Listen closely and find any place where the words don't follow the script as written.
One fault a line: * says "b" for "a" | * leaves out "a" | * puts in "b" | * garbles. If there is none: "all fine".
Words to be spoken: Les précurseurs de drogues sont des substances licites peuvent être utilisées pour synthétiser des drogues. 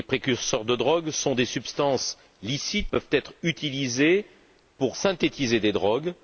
all fine